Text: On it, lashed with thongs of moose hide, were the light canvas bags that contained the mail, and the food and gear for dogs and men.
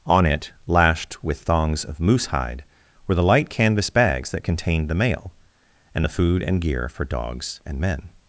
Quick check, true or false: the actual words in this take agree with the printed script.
true